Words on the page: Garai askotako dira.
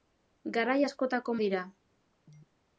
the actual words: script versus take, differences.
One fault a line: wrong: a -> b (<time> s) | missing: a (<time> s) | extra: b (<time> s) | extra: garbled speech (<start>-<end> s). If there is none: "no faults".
no faults